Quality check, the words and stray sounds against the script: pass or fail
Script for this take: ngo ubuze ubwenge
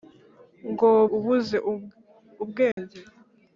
fail